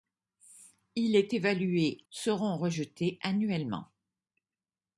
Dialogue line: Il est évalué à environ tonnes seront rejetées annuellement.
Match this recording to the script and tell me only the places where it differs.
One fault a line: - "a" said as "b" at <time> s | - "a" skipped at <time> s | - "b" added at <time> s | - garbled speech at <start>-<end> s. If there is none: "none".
- "à environ tonnes" skipped at 2.0 s